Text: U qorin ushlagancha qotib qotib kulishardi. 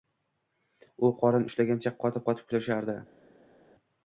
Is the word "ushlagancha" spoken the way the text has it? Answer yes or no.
yes